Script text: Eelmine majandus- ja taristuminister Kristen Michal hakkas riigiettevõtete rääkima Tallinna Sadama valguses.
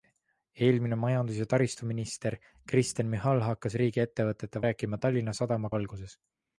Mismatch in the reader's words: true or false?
false